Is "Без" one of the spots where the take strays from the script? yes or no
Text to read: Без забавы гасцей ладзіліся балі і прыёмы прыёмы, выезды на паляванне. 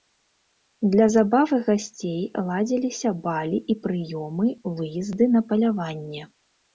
yes